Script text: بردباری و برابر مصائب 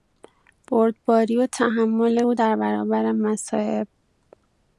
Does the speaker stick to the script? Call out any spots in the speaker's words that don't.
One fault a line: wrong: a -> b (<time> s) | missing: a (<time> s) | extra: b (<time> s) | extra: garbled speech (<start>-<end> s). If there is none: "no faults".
extra: تحمل او در (1.5 s)